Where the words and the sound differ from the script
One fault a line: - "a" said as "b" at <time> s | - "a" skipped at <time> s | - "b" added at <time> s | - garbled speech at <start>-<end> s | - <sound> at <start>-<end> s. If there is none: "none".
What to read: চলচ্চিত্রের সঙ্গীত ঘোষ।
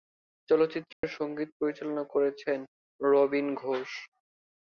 - dropout at 0.9-1.0 s
- "পরিচালনা করেছেন রবীন" added at 1.6 s